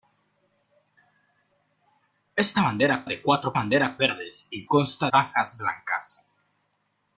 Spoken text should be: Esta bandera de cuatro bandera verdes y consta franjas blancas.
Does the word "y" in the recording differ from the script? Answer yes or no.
no